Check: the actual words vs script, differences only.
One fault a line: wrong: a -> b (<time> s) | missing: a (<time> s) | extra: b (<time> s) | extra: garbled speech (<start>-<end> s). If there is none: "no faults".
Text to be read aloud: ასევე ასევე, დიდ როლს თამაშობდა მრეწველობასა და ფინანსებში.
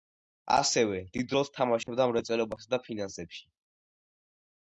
missing: ასევე (1.0 s)